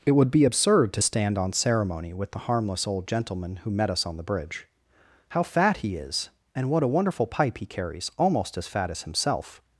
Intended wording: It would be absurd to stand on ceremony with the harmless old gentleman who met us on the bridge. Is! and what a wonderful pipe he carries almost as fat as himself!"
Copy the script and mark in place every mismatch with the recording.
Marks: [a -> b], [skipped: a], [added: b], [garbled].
It would be absurd to stand on ceremony with the harmless old gentleman who met us on the bridge. [added: How fat he] Is! and what a wonderful pipe he carries almost as fat as himself!"